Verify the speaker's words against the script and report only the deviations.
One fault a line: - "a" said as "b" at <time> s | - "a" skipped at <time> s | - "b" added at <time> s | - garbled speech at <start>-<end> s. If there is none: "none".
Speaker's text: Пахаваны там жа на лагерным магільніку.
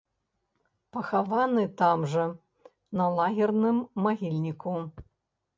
none